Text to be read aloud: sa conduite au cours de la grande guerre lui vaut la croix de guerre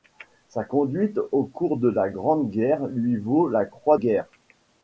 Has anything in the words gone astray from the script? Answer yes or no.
yes